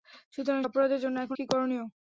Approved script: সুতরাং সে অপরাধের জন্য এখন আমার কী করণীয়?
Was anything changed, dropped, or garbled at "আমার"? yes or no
yes